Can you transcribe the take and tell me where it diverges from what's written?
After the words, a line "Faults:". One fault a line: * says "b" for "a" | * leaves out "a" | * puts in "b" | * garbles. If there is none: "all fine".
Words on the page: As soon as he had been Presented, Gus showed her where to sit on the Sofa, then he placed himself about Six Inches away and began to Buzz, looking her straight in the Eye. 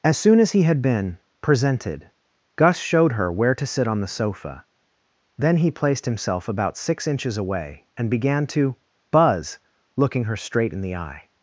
As soon as he had been Presented, Gus showed her where to sit on the Sofa, then he placed himself about Six Inches away and began to Buzz, looking her straight in the Eye.
Faults:
all fine